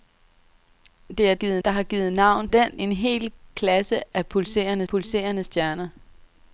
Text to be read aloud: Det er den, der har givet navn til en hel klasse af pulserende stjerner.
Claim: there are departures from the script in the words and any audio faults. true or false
true